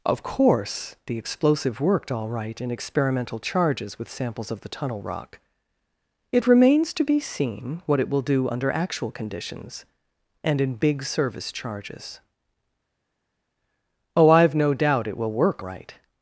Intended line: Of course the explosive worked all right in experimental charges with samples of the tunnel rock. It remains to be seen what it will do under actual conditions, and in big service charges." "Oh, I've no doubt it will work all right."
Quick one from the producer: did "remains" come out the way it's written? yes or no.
yes